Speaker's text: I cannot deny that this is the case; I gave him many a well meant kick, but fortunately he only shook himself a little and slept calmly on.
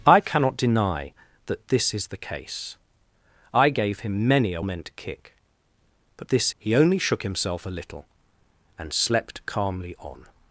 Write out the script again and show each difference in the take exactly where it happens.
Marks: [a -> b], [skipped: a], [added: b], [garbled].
I cannot deny that this is the case; I gave him many a [skipped: well] meant kick, but [fortunately -> this] he only shook himself a little and slept calmly on.